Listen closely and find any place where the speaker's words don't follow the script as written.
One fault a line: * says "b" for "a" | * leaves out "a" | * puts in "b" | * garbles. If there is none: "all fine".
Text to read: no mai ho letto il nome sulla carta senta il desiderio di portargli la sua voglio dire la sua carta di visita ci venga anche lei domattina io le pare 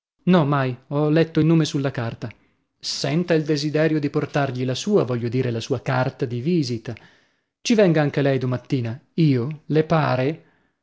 all fine